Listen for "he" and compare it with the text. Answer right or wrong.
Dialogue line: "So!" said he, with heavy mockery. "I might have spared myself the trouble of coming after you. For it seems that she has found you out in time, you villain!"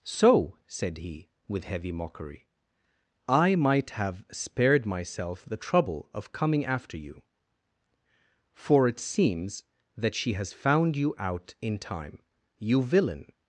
right